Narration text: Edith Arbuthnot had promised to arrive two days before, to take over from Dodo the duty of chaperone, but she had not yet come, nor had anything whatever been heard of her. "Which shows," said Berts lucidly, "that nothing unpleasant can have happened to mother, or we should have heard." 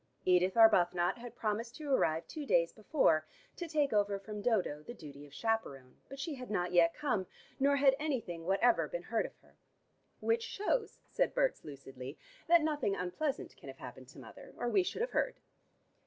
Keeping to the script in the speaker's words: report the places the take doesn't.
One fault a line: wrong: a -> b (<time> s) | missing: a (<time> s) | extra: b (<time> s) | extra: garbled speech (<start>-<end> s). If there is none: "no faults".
no faults